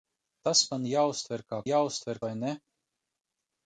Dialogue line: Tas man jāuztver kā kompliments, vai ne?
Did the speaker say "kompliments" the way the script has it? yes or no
no